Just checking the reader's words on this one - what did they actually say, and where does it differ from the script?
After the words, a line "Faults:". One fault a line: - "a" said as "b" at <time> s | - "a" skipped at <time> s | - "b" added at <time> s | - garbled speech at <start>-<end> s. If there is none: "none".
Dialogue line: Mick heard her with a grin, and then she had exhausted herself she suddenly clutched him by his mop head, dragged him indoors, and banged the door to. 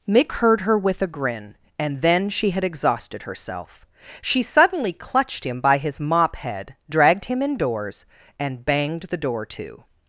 Mick heard her with a grin, and then she had exhausted herself she suddenly clutched him by his mop head, dragged him indoors, and banged the door to.
Faults:
none